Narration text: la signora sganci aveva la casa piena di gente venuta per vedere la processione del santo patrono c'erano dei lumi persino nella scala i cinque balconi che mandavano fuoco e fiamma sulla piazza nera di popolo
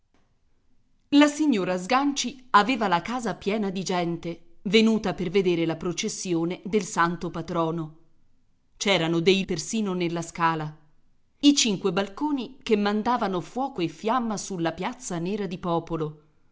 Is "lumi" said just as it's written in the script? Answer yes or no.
no